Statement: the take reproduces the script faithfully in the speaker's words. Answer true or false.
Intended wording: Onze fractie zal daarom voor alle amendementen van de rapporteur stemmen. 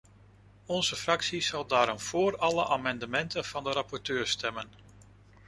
true